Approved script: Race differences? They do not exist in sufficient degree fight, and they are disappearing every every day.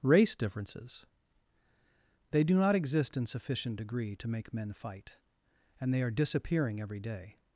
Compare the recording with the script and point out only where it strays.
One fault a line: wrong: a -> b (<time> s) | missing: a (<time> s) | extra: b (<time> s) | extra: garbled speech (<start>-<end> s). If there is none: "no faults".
extra: to make men (4.2 s)
missing: every (7.0 s)